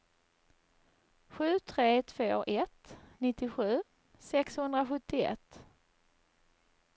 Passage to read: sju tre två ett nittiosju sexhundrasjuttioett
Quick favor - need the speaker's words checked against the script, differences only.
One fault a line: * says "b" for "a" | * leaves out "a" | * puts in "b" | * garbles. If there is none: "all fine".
all fine